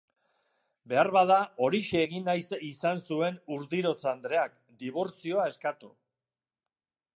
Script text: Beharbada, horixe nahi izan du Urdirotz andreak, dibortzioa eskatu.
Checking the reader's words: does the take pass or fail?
fail